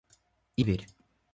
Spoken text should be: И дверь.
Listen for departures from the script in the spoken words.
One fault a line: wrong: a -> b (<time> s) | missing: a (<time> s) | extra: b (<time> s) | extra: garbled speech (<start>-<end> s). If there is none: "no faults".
no faults